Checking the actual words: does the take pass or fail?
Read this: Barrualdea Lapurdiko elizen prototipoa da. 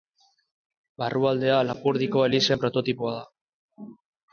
pass